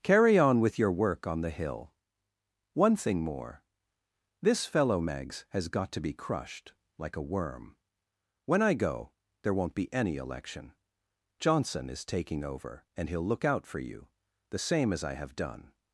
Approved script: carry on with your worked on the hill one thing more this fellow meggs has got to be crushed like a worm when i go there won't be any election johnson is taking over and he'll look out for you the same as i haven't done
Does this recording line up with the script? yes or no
no